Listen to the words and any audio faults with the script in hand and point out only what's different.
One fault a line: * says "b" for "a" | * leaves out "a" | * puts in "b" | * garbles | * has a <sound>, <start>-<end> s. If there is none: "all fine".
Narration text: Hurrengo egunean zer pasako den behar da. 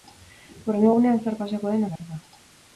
* has a dropout, 2.0-2.0 s